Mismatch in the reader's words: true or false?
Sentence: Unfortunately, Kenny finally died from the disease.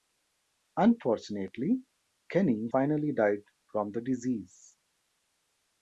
false